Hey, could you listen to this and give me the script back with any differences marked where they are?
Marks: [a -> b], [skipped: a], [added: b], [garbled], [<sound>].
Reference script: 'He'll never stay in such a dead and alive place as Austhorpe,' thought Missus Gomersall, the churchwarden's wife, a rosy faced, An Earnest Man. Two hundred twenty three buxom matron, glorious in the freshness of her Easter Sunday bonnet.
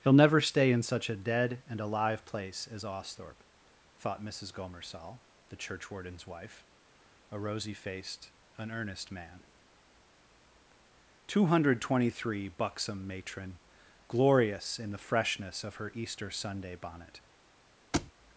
'He'll never stay in such a dead and alive place as Austhorpe,' thought Missus Gomersall, the churchwarden's wife, a rosy faced, An Earnest Man. Two hundred twenty three buxom matron, glorious in the freshness of her Easter Sunday bonnet. [thud]